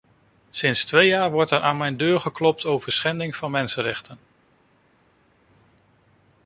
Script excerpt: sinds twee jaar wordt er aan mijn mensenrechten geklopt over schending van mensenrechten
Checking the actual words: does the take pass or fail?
fail